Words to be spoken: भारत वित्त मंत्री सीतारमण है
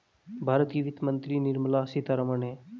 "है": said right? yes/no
yes